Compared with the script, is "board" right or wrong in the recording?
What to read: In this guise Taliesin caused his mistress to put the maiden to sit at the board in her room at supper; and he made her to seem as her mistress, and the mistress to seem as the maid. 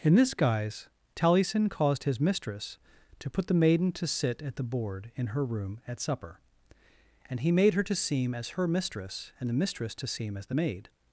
right